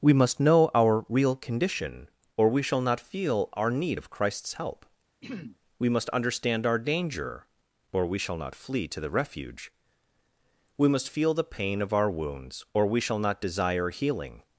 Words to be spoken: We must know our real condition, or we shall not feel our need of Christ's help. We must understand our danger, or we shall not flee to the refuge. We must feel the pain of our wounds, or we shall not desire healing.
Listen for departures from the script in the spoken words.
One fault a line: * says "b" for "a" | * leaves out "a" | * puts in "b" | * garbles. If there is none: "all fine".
all fine